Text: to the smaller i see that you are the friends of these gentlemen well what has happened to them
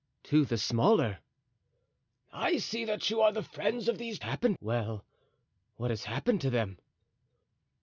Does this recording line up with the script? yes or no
no